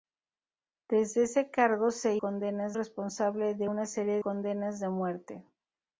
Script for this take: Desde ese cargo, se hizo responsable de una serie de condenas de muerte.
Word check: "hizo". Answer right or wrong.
wrong